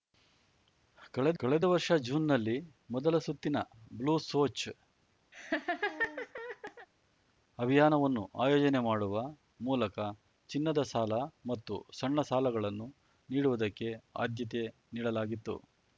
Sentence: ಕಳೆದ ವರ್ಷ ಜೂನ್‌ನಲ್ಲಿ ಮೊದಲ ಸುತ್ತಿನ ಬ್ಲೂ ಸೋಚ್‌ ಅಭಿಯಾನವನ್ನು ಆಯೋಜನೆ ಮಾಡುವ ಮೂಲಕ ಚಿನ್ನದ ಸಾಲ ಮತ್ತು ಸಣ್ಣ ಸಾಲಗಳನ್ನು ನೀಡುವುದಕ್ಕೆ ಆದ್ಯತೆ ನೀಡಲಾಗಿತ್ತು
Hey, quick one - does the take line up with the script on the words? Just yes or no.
no